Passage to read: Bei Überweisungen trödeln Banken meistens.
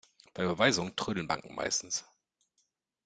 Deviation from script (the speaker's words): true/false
false